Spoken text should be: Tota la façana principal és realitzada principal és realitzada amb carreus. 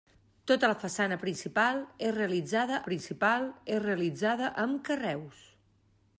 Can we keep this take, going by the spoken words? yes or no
yes